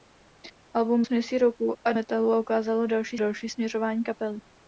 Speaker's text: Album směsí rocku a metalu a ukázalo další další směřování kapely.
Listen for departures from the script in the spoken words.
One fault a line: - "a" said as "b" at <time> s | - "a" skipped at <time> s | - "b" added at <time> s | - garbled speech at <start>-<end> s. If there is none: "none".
none